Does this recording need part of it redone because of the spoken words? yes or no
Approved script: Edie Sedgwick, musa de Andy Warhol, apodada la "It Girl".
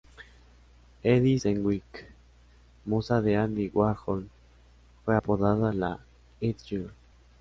yes